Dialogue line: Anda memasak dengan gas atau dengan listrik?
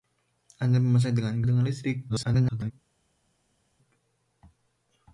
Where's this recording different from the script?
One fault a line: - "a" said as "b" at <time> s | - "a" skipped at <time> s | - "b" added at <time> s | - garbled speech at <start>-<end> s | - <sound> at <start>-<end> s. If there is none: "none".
- "gas atau" skipped at 1.4 s
- garbled speech at 2.1-2.7 s